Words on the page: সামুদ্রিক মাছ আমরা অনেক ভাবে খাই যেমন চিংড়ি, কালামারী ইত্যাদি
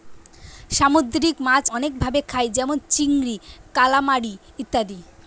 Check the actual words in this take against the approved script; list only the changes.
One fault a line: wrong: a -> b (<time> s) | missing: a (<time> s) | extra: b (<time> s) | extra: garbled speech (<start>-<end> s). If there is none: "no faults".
missing: আমরা (1.6 s)